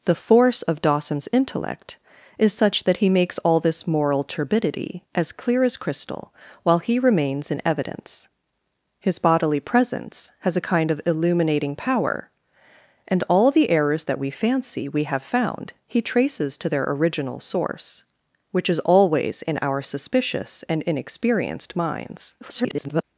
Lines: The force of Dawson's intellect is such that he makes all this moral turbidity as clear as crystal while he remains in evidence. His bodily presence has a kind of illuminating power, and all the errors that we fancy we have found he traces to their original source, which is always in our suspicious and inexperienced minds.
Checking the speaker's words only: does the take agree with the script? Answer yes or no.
no